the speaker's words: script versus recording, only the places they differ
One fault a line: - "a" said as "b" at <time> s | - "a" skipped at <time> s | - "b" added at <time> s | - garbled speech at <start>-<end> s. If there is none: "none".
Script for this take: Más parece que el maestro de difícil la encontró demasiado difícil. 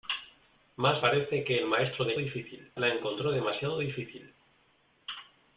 none